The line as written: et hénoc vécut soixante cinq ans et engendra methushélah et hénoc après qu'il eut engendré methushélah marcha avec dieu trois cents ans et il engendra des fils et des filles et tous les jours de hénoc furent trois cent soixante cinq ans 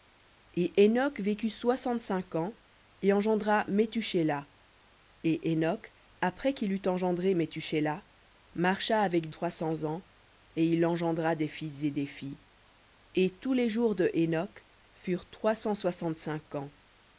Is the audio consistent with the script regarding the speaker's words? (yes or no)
no